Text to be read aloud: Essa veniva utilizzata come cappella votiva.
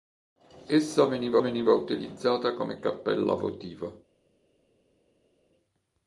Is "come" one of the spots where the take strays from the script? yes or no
no